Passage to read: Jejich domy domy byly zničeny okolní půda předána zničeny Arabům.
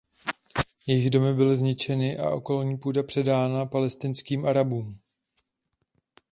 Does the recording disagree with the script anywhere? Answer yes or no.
yes